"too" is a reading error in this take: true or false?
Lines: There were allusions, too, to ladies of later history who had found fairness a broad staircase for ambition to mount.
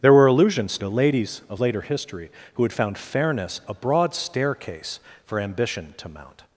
true